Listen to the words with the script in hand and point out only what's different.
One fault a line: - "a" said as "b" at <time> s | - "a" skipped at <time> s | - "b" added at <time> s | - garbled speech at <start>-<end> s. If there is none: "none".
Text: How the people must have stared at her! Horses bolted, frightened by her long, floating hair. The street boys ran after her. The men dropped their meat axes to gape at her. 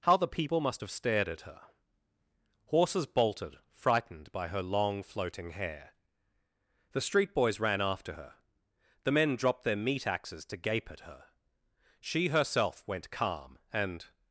- "She herself went calm and" added at 12.0 s